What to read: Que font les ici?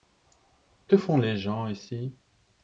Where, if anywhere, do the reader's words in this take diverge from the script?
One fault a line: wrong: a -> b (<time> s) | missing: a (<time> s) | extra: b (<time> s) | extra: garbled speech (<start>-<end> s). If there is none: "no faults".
extra: gens (1.4 s)